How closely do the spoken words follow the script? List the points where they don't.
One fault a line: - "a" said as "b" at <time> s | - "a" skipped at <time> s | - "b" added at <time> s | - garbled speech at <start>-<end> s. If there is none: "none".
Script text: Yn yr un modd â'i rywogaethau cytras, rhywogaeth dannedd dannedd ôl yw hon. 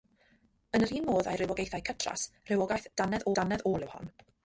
none